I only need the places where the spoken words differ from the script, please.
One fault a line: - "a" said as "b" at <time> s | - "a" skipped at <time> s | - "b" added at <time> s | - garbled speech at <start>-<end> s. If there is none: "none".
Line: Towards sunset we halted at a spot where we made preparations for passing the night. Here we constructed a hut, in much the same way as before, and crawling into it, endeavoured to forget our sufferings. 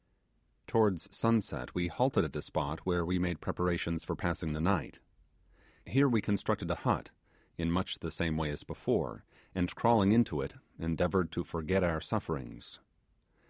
none